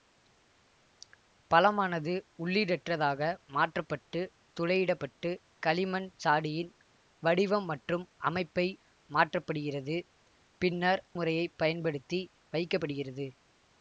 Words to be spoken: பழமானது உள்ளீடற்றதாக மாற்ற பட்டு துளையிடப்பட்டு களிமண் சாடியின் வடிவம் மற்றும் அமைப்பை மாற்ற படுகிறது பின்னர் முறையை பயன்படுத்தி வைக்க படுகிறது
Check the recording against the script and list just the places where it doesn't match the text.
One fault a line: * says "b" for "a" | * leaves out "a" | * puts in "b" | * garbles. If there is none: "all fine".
all fine